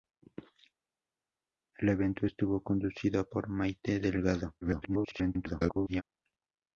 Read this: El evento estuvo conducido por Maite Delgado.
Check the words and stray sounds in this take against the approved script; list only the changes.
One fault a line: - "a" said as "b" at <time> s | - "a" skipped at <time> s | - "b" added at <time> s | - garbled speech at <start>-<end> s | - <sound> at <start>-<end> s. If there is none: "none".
- garbled speech at 4.6-6.0 s